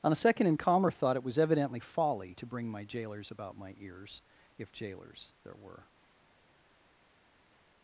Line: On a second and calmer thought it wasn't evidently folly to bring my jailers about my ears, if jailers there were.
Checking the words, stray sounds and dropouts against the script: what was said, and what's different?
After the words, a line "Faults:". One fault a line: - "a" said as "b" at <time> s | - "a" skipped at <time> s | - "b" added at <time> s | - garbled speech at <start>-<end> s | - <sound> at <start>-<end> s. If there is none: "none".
On a second and calmer thought it was evidently folly to bring my jailers about my ears, if jailers there were.
Faults:
- "wasn't" said as "was" at 1.2 s